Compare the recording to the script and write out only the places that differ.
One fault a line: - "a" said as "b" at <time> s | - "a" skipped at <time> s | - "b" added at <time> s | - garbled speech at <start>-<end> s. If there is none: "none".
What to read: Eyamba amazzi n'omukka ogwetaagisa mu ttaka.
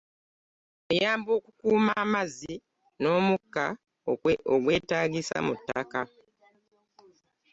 - "okukuuma" added at 1.4 s